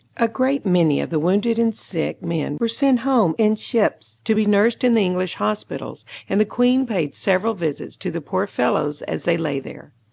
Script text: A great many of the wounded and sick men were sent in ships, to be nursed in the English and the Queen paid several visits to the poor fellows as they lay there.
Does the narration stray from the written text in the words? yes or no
yes